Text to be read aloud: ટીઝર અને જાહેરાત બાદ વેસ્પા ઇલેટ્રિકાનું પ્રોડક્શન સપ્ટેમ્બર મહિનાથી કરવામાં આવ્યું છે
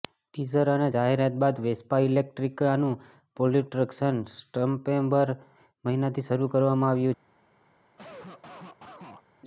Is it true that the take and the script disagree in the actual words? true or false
true